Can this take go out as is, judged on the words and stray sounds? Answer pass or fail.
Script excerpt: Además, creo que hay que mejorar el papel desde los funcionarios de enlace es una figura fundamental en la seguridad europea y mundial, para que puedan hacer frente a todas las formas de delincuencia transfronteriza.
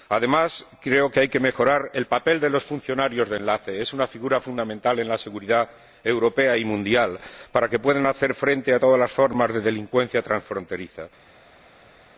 fail